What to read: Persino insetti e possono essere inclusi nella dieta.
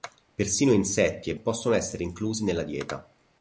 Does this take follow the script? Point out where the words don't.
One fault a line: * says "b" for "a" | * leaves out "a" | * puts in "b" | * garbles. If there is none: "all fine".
all fine